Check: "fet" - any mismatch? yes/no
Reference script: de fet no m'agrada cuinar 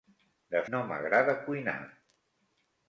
yes